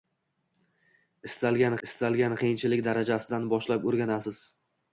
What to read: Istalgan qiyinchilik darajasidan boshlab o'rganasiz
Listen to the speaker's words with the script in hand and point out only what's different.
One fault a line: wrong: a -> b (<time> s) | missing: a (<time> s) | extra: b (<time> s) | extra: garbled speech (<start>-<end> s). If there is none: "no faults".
extra: istalgan (1.9 s)